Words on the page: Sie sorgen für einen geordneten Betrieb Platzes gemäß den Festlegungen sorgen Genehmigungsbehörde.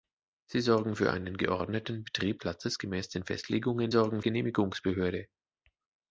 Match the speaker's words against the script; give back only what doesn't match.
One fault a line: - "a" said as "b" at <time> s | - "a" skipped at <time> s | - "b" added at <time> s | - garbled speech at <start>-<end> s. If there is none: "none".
none